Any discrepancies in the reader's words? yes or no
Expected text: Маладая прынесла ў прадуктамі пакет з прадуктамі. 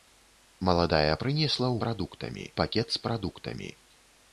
no